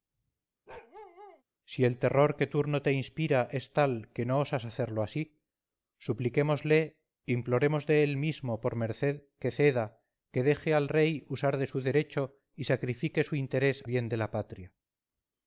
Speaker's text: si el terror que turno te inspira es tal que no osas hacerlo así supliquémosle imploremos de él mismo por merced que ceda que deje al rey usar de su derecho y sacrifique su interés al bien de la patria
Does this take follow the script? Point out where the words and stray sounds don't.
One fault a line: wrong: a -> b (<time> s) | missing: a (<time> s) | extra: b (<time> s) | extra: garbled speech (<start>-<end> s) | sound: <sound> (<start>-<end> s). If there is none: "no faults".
sound: bark (0.7-1.4 s)
missing: al (13.8 s)